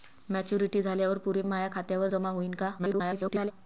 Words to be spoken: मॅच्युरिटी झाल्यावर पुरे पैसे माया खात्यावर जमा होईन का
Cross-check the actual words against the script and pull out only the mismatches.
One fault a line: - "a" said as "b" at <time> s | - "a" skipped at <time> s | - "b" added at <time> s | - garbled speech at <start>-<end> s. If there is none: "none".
- "पैसे" skipped at 1.4 s
- garbled speech at 2.8-3.5 s